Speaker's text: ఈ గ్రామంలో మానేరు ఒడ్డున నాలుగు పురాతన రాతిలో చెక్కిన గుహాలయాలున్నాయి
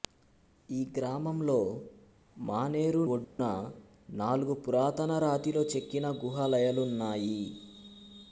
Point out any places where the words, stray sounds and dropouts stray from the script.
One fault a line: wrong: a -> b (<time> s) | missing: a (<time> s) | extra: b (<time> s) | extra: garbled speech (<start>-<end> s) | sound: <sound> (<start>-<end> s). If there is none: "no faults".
sound: dropout (3.2-3.4 s)